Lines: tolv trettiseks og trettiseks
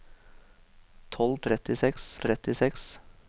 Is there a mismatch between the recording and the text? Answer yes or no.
no